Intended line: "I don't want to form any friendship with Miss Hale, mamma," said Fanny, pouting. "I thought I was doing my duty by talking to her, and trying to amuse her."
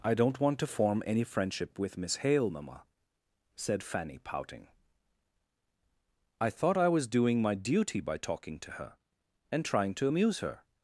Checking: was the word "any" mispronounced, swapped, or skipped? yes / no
no